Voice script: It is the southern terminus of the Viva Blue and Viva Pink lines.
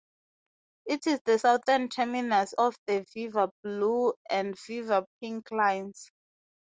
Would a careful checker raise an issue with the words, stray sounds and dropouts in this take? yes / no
no